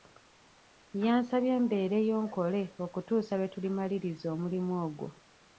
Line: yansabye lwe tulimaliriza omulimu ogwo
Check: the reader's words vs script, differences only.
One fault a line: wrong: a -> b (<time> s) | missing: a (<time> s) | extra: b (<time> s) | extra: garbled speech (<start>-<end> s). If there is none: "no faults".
extra: mbeereyo nkole okutuusa (1.6 s)